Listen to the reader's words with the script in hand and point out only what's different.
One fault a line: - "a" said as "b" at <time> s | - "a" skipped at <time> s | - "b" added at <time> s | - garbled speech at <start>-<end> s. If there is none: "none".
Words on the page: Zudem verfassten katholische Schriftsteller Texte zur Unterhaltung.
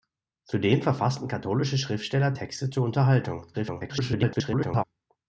- garbled speech at 3.5-4.8 s